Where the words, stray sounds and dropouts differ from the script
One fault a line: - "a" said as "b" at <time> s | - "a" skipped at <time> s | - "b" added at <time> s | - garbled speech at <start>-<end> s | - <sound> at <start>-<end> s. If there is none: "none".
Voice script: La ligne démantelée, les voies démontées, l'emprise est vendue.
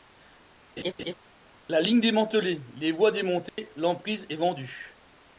- laugh at 0.8-1.1 s
- dropout at 3.5-3.6 s